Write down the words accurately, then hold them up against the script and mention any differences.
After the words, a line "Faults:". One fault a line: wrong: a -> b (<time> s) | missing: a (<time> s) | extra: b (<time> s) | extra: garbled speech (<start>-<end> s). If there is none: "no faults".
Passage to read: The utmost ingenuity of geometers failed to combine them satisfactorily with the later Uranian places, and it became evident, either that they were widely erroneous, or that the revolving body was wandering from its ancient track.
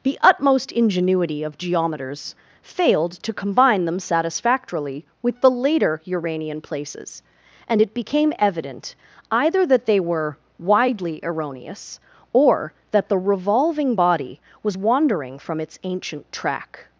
The utmost ingenuity of geometers failed to combine them satisfactorily with the later Uranian places, and it became evident, either that they were widely erroneous, or that the revolving body was wandering from its ancient track.
Faults:
no faults